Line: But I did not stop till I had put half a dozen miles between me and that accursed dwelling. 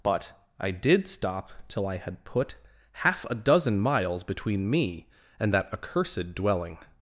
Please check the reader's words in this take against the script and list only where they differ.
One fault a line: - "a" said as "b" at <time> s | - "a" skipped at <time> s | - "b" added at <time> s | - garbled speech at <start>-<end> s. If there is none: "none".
- "not" skipped at 1.1 s